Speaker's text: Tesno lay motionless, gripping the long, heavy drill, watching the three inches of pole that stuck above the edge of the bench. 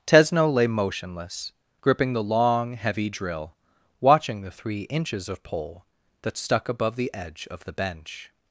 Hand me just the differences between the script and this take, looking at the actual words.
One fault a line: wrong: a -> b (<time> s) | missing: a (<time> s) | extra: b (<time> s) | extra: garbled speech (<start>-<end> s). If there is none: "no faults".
no faults